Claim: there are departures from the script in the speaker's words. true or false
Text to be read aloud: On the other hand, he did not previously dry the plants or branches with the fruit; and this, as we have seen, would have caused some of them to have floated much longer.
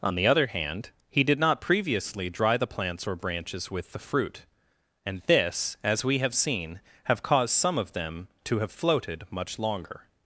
true